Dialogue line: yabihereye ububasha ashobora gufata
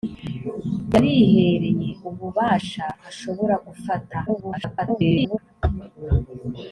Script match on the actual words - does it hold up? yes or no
no